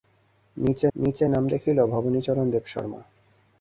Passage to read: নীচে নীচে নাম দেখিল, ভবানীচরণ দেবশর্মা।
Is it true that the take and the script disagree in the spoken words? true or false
false